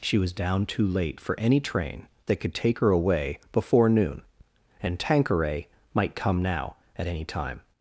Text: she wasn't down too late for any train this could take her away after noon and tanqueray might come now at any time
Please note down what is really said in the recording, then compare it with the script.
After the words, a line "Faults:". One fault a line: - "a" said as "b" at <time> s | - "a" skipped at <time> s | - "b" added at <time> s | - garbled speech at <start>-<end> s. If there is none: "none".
she was down too late for any train that could take her away before noon and tanqueray might come now at any time
Faults:
- "wasn't" said as "was" at 0.2 s
- "this" said as "that" at 2.2 s
- "after" said as "before" at 3.5 s